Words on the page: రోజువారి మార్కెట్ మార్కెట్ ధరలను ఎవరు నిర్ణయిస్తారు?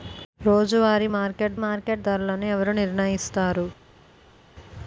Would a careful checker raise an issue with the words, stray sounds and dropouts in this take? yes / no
no